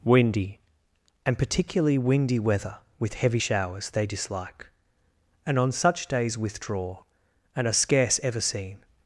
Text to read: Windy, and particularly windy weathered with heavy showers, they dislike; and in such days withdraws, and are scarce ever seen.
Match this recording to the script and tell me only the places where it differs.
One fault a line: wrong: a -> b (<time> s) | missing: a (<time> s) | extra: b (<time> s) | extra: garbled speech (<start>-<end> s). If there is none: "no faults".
wrong: weathered -> weather (2.4 s)
wrong: in -> on (5.6 s)
wrong: withdraws -> withdraw (6.4 s)